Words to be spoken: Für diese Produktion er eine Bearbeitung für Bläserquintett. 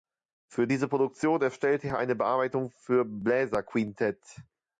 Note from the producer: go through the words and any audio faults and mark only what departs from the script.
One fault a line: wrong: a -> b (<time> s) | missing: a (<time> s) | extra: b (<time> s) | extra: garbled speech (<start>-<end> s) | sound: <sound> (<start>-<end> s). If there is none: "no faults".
extra: erstellte (1.4 s)